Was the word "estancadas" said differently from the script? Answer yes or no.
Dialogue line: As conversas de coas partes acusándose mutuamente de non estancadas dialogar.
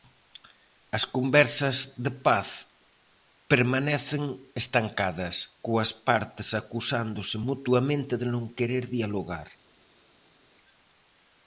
yes